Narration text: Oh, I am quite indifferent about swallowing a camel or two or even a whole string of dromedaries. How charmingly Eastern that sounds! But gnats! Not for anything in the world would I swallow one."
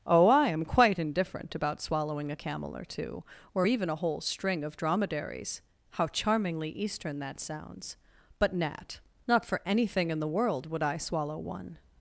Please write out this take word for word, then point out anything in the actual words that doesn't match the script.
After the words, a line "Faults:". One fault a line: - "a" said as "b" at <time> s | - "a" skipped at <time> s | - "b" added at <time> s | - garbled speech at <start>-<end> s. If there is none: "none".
Oh, I am quite indifferent about swallowing a camel or two or even a whole string of dromedaries. How charmingly Eastern that sounds! But gnat! Not for anything in the world would I swallow one."
Faults:
- "gnats" said as "gnat" at 8.5 s